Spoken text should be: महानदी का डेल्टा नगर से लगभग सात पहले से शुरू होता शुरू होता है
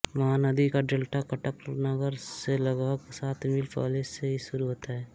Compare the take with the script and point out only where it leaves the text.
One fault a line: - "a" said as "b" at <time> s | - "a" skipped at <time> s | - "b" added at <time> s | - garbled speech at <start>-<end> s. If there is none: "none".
- "कटक" added at 1.3 s
- "मील" added at 3.5 s
- "शुरू होता" skipped at 4.9 s